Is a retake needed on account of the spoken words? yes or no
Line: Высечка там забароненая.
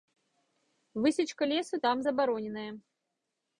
yes